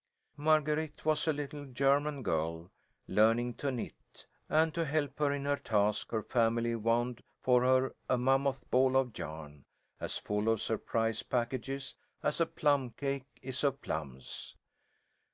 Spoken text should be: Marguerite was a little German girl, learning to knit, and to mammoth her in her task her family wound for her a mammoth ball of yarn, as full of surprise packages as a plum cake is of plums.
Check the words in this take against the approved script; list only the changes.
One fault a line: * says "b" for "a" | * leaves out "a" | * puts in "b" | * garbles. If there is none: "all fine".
* says "help" for "mammoth"